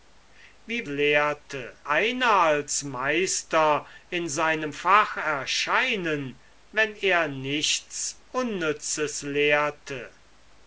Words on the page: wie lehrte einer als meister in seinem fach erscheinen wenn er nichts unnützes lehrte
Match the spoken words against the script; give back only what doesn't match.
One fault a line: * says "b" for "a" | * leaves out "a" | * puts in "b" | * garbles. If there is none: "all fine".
all fine